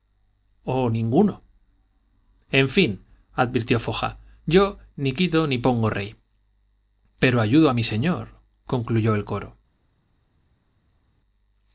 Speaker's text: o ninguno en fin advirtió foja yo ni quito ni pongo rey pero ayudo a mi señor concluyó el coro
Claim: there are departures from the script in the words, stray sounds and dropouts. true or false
false